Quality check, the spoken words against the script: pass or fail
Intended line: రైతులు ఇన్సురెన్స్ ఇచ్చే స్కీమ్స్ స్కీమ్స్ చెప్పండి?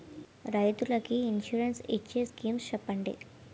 fail